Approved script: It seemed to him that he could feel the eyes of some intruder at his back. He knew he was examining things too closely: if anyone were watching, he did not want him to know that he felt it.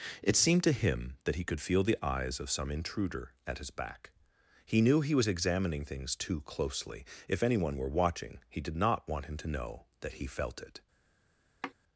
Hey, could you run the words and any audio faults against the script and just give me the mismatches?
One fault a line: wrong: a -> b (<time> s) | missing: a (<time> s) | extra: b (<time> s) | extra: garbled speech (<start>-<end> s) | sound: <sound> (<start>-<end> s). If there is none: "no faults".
sound: sigh (11.6-11.7 s)